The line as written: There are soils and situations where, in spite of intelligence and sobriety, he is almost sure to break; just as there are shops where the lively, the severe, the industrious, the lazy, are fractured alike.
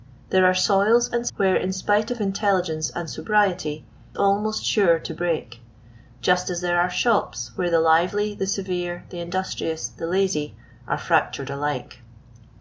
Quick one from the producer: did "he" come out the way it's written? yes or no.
no